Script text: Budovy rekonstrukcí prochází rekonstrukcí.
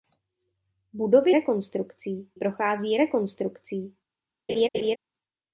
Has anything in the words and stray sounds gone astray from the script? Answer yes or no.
yes